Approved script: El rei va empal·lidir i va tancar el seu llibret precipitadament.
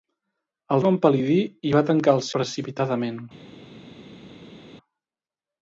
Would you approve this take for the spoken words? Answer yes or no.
no